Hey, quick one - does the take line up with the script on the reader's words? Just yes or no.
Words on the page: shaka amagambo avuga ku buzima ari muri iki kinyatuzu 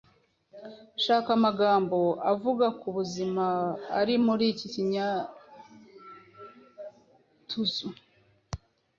yes